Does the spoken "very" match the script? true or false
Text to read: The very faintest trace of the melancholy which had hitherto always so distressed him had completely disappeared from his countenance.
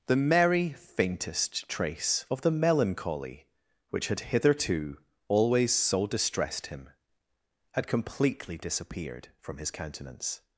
false